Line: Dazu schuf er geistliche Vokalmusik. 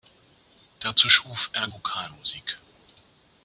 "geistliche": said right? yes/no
no